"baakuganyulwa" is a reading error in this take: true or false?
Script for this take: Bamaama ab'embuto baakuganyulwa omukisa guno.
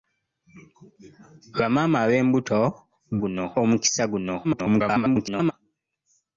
true